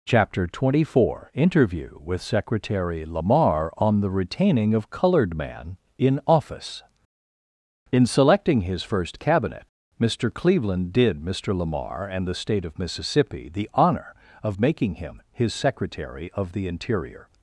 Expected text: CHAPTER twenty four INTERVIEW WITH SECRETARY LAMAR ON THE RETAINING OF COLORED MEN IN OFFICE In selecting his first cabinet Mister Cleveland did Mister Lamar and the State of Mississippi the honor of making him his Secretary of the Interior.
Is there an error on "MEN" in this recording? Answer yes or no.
yes